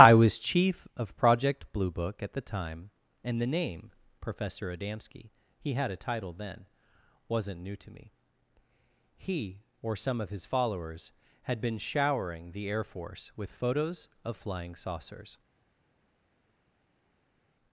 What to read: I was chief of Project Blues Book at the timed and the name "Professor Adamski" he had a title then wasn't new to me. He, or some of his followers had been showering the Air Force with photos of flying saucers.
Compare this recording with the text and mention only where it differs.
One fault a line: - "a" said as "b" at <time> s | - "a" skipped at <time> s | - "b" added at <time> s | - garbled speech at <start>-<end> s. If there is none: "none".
- "Blues" said as "Blue" at 1.7 s
- "timed" said as "time" at 2.4 s